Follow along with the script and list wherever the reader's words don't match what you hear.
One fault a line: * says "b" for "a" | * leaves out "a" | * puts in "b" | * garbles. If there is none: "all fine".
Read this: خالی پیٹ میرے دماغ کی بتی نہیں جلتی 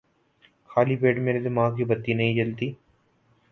all fine